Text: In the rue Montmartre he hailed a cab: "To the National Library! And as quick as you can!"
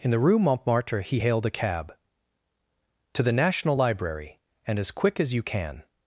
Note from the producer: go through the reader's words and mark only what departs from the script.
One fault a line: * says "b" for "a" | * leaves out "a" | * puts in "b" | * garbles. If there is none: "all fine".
all fine